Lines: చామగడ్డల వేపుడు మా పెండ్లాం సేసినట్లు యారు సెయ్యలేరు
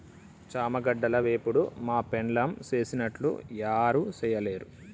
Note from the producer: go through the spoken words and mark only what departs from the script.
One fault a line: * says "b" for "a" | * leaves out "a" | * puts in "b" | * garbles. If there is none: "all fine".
all fine